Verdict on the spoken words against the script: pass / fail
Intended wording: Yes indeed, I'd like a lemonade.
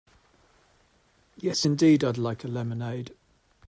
pass